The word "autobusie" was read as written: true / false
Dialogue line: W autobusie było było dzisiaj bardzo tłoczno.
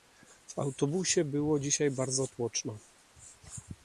true